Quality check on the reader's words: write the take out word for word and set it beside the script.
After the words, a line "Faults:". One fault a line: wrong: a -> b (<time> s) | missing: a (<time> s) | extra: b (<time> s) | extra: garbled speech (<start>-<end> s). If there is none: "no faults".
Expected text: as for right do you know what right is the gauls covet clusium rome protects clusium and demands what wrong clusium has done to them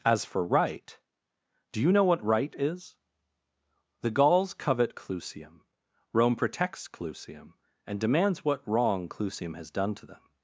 as for right do you know what right is the gauls covet clusium rome protects clusium and demands what wrong clusium has done to them
Faults:
no faults